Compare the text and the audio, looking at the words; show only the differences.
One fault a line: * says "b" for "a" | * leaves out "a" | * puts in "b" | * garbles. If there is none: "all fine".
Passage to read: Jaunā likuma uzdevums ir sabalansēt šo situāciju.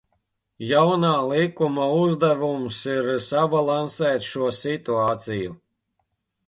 all fine